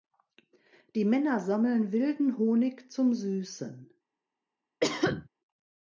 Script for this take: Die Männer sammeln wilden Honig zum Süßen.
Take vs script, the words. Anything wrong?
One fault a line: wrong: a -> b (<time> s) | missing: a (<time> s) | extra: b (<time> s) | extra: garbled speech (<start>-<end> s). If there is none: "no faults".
no faults